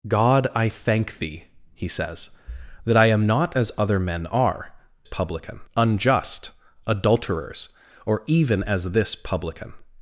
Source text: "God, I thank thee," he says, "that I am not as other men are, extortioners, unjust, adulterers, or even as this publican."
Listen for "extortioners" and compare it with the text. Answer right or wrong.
wrong